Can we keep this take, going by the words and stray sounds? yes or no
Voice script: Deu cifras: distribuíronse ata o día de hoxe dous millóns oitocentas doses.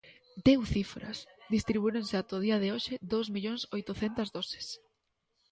yes